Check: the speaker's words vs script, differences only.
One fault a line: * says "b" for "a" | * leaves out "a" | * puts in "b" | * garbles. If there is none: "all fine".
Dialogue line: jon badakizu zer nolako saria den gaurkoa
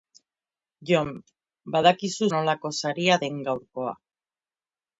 * leaves out "zer"